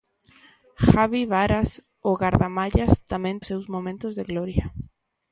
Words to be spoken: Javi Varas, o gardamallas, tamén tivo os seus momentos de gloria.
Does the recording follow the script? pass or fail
fail